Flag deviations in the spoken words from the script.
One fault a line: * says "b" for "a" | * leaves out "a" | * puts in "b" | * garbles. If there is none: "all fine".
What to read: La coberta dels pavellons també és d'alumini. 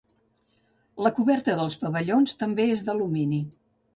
all fine